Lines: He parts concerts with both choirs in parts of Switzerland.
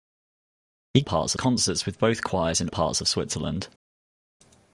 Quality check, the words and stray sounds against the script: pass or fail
pass